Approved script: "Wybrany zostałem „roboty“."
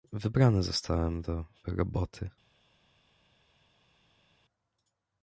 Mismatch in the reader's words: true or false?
true